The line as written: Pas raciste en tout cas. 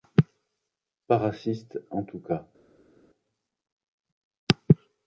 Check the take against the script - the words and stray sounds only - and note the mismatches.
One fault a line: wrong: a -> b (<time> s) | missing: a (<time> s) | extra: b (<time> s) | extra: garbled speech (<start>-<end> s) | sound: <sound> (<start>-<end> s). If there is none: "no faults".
no faults